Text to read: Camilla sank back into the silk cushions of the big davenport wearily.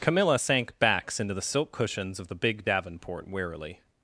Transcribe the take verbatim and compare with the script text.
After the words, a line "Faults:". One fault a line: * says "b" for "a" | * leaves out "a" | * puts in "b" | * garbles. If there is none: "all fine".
Camilla sank backs into the silk cushions of the big davenport wearily.
Faults:
* says "backs" for "back"